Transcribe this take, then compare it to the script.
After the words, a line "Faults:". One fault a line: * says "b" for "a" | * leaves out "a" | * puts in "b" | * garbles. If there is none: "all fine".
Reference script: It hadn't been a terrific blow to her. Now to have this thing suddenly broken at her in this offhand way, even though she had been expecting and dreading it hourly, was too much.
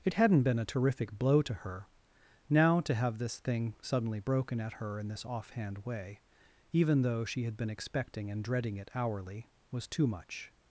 It hadn't been a terrific blow to her. Now to have this thing suddenly broken at her in this offhand way, even though she had been expecting and dreading it hourly, was too much.
Faults:
all fine